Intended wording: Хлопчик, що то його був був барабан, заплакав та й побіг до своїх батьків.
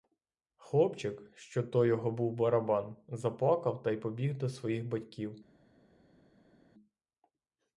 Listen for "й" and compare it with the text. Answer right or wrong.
right